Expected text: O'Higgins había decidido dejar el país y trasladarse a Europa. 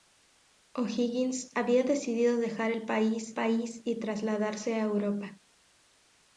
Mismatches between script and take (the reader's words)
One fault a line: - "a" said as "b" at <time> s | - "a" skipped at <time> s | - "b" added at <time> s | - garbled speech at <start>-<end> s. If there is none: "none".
- "país" added at 3.3 s